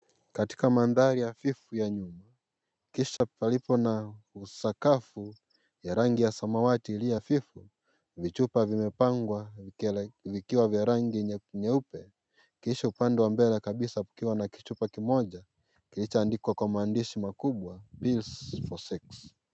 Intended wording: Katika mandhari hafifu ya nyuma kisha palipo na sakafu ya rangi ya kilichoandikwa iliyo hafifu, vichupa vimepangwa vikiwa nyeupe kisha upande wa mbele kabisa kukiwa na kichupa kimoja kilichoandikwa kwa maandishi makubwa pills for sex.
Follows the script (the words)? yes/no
no